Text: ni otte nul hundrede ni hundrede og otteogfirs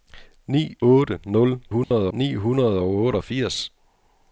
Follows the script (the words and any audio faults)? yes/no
no